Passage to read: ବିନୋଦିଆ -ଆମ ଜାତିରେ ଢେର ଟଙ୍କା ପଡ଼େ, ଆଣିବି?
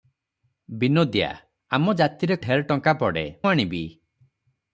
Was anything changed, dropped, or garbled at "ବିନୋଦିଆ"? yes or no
no